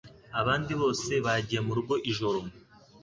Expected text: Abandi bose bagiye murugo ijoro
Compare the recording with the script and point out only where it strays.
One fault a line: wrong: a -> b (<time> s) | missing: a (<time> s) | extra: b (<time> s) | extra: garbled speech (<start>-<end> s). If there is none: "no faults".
no faults